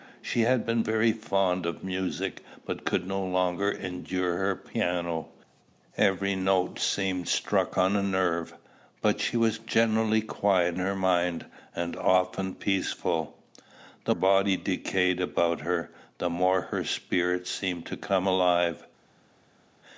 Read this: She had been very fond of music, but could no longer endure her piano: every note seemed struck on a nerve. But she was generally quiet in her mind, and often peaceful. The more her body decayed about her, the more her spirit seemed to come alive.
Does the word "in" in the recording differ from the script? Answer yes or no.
yes